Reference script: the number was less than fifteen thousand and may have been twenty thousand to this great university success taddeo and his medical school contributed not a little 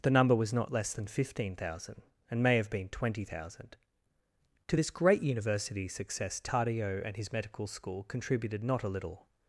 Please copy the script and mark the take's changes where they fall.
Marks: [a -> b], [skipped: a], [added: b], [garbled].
the number was [added: not] less than fifteen thousand and may have been twenty thousand to this great university success taddeo and his medical school contributed not a little